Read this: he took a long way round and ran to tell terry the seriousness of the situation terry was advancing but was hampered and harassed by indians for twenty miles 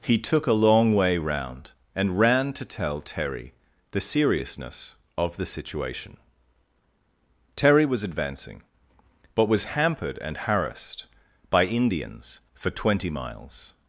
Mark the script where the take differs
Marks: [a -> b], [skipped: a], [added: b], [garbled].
he took a long way round and ran to tell terry the seriousness of the situation terry was advancing but was hampered and harassed by indians for twenty miles